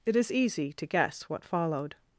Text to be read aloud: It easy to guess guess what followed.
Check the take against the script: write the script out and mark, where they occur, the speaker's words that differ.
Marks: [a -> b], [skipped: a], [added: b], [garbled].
It [added: is] easy to guess [skipped: guess] what followed.